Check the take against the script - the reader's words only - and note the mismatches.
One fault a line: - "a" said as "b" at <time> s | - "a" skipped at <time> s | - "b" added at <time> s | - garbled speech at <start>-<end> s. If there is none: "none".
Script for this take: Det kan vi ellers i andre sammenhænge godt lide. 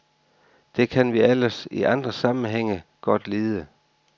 none